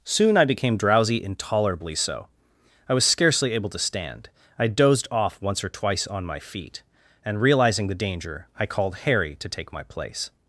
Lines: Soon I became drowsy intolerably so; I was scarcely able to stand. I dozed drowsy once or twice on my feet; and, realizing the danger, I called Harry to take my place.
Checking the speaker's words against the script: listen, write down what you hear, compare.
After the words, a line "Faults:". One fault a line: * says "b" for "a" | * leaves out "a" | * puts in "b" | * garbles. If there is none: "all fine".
Soon I became drowsy intolerably so; I was scarcely able to stand. I dozed off once or twice on my feet; and, realizing the danger, I called Harry to take my place.
Faults:
* says "off" for "drowsy"